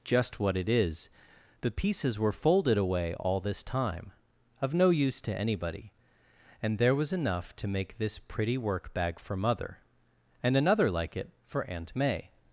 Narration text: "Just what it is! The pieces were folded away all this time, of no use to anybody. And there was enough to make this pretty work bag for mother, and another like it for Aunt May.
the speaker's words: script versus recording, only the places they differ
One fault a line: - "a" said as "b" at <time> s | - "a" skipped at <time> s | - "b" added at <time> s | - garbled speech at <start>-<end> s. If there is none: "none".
none